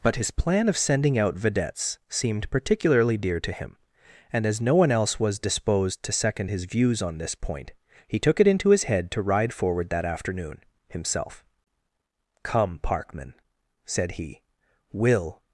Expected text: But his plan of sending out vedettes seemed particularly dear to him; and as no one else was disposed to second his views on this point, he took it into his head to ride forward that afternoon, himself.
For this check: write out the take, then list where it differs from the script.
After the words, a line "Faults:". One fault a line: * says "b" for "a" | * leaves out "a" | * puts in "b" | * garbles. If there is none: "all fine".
But his plan of sending out vedettes seemed particularly dear to him; and as no one else was disposed to second his views on this point, he took it into his head to ride forward that afternoon, himself. "Come, Parkman," said he, "will
Faults:
* puts in "Come Parkman said he will"